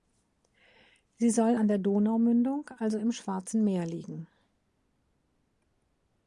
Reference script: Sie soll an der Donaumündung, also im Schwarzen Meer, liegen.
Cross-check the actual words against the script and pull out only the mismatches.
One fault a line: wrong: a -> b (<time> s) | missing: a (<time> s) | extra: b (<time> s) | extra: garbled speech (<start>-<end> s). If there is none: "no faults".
no faults